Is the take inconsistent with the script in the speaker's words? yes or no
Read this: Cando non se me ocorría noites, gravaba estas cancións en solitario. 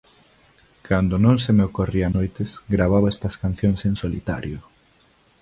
no